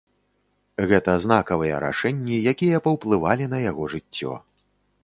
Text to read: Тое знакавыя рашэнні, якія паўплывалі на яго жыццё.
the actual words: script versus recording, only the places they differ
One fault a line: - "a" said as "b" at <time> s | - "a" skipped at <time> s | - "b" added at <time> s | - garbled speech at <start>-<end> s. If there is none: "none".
- "Тое" said as "Гэта" at 0.9 s